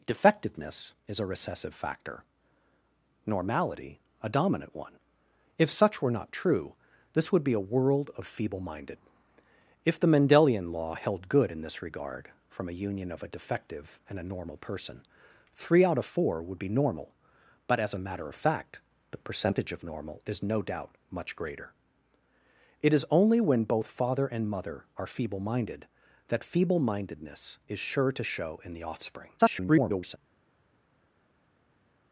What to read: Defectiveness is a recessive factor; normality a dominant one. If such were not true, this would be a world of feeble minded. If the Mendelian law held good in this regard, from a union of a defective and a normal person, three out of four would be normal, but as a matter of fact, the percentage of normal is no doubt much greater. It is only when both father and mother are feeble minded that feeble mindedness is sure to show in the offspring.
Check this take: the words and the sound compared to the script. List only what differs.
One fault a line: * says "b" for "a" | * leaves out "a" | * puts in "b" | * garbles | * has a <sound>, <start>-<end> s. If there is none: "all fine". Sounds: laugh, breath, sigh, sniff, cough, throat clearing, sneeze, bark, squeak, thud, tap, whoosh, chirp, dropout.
* garbles